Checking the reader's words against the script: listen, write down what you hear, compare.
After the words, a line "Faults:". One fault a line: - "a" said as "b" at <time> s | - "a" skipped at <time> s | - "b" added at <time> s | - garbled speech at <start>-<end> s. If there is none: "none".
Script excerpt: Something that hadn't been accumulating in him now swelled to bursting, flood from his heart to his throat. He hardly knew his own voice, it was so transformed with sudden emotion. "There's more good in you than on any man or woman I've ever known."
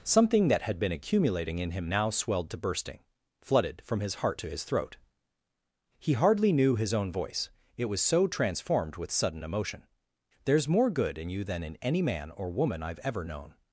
Something that had been accumulating in him now swelled to bursting, flooded from his heart to his throat. He hardly knew his own voice, it was so transformed with sudden emotion. "There's more good in you than in any man or woman I've ever known."
Faults:
- "hadn't" said as "had" at 0.6 s
- "flood" said as "flooded" at 3.4 s
- "on" said as "in" at 11.6 s